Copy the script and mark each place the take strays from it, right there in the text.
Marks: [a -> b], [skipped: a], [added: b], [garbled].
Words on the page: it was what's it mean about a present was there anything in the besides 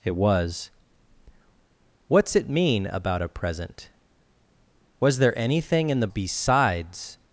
it was what's it mean about a present was there anything in the besides